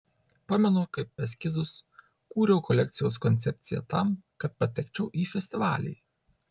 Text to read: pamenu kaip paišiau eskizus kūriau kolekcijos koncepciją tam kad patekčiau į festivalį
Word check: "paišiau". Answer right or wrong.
wrong